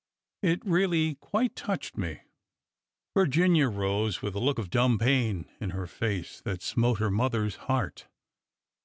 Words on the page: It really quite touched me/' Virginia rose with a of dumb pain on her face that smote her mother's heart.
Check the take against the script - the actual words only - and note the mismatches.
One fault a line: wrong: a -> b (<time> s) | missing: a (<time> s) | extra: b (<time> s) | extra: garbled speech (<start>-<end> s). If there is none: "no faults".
extra: look (4.4 s)
wrong: on -> in (5.6 s)